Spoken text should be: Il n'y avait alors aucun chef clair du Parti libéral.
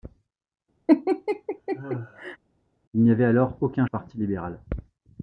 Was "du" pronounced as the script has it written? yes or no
no